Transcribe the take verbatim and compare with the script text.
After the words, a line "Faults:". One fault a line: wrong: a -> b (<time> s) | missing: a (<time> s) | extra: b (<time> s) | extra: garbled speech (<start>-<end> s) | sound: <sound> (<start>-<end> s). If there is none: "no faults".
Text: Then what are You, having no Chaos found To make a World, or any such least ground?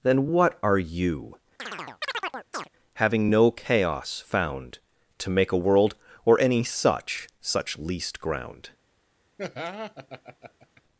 Then what are You, having no Chaos found To make a World, or any such such least ground?
Faults:
sound: chirp (1.6-2.7 s)
extra: such (7.4 s)
sound: laugh (9.4-10.8 s)